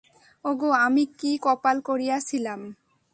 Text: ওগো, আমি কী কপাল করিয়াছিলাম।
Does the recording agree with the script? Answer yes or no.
yes